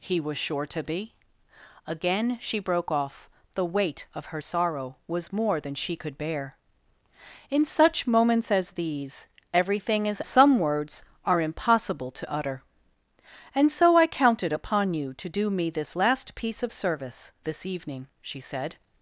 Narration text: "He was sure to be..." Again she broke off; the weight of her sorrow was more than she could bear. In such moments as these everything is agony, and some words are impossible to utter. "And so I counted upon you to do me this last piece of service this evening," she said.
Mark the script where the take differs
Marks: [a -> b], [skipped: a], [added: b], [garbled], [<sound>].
"He was sure to be..." Again she broke off; the weight of her sorrow was more than she could bear. In such moments as these everything is [skipped: agony, and] some words are impossible to utter. "And so I counted upon you to do me this last piece of service this evening," she said.